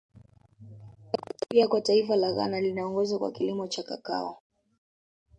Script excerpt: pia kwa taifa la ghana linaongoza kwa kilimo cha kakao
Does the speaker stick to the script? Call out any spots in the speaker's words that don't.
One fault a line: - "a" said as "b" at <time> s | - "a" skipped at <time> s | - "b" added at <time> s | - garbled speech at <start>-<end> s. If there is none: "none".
none